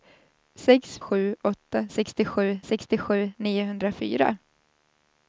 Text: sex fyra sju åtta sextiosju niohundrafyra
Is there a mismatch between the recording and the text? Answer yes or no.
yes